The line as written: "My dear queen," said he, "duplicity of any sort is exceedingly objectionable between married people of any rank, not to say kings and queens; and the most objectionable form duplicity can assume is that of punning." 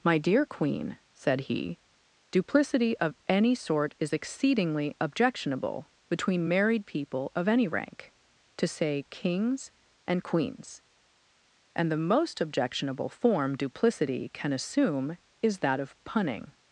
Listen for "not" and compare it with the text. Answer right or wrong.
wrong